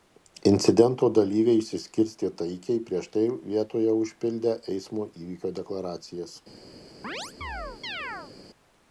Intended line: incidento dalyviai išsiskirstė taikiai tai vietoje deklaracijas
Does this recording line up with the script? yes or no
no